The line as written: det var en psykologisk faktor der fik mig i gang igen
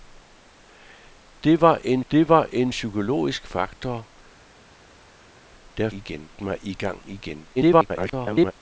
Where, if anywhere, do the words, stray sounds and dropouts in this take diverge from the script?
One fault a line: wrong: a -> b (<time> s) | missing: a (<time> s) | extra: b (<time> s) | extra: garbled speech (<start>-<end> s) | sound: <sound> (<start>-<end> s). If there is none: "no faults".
extra: det var en (2.1 s)
wrong: fik -> igen (5.9 s)
extra: garbled speech (7.6-8.5 s)